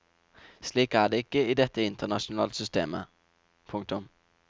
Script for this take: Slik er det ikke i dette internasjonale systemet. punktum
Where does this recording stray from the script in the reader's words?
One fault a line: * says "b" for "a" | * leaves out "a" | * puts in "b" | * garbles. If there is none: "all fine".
all fine